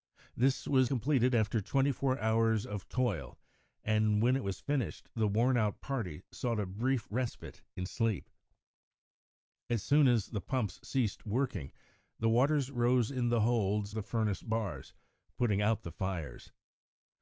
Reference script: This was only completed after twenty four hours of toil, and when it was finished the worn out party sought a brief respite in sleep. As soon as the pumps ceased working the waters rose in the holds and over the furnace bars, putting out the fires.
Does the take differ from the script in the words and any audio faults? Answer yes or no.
yes